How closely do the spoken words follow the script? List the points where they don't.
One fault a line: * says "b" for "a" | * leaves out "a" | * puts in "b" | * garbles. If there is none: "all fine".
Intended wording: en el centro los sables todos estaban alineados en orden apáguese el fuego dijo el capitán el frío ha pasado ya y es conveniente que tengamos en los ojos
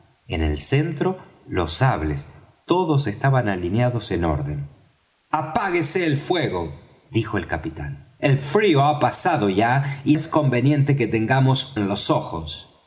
all fine